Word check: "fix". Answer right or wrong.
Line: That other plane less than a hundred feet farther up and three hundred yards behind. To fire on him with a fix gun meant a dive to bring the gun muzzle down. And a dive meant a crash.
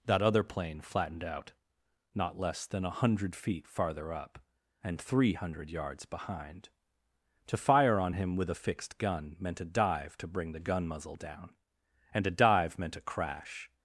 wrong